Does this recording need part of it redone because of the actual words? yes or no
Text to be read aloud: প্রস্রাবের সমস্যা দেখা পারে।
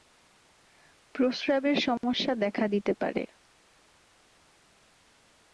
yes